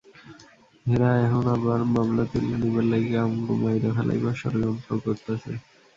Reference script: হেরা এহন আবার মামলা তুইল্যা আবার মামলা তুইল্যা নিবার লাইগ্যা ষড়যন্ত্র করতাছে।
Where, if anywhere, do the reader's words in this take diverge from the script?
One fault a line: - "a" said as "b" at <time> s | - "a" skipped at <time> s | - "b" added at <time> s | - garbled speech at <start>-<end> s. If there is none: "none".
- "আবার মামলা তুইল্যা নিবার লাইগ্যা" said as "নিবার লাইগ্যা আমগো মাইরা ফেলাইবার" at 2.6 s